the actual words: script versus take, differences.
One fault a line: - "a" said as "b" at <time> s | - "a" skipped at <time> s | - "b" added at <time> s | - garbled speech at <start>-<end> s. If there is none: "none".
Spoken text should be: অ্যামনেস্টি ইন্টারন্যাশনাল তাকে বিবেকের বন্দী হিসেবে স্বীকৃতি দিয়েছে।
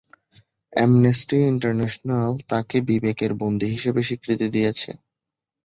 none